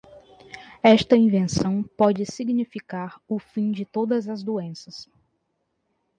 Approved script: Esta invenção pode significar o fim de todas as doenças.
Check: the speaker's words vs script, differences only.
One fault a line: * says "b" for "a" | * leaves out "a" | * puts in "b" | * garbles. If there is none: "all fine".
all fine